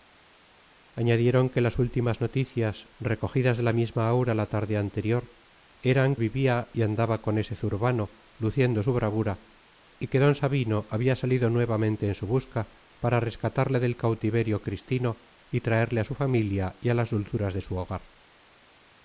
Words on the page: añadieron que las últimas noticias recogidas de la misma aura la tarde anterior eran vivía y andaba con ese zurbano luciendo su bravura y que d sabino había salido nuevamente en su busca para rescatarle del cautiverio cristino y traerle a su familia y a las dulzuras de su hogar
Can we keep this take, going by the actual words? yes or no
yes